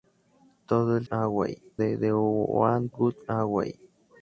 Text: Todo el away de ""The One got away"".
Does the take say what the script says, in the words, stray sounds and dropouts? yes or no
yes